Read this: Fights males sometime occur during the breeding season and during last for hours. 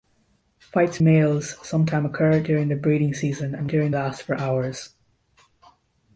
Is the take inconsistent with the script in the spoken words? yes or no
no